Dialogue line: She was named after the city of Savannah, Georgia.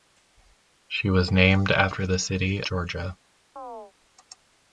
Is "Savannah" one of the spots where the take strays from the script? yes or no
yes